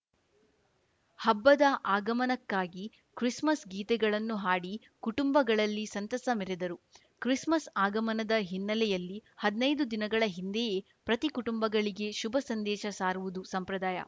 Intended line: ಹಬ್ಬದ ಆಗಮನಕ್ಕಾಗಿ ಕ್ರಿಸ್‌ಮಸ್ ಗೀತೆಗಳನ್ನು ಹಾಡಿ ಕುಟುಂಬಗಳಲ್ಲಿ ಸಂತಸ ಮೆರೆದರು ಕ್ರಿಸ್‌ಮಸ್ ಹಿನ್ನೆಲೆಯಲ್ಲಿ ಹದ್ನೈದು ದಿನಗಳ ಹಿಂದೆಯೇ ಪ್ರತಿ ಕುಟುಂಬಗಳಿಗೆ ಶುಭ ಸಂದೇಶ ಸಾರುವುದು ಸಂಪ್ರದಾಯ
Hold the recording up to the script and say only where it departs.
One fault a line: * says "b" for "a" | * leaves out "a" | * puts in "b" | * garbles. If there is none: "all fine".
* puts in "ಆಗಮನದ"